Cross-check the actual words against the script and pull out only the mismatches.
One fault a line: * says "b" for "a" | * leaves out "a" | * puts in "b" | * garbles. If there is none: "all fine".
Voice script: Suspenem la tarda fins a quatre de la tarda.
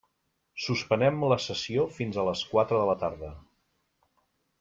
* says "sessió" for "tarda"
* puts in "les"